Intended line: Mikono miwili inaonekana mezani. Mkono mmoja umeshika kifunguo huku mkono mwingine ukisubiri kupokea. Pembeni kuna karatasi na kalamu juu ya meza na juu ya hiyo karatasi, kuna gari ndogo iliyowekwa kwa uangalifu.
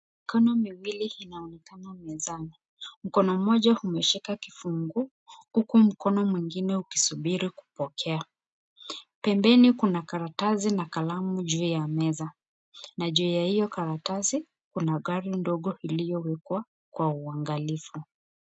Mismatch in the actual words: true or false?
false